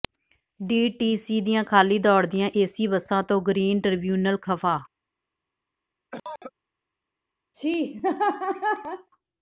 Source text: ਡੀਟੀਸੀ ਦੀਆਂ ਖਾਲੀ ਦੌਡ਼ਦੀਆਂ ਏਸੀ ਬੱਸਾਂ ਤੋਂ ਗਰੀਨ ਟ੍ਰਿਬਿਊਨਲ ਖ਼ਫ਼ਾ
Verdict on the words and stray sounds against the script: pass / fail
fail